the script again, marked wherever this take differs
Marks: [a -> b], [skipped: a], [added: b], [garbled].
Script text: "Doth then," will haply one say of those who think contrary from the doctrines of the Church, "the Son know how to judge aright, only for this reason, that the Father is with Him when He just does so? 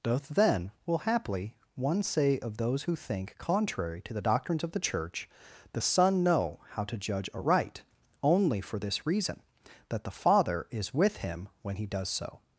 "Doth then," will haply one say of those who think contrary [from -> to] the doctrines of the Church, "the Son know how to judge aright, only for this reason, that the Father is with Him when He [skipped: just] does so?